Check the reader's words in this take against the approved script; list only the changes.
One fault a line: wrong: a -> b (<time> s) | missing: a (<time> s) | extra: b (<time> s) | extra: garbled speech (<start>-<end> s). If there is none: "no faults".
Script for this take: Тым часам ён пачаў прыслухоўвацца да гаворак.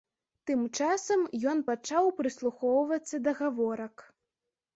no faults